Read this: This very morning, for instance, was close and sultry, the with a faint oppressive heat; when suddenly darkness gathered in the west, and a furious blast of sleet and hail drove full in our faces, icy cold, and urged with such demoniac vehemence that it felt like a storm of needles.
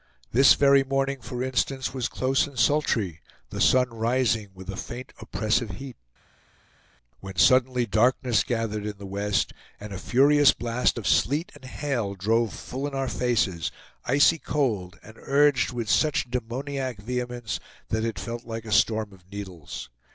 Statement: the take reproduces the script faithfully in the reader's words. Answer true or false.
false